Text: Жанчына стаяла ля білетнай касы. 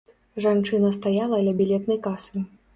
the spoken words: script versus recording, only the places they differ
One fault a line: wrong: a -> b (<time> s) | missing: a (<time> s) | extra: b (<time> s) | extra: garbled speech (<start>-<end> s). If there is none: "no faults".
no faults